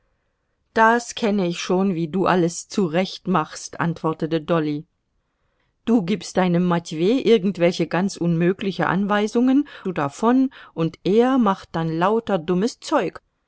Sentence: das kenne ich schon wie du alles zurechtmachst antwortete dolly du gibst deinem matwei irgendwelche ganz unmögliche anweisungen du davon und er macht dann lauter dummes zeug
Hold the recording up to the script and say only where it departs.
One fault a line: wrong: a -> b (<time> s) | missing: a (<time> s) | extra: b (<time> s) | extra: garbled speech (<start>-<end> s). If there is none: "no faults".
no faults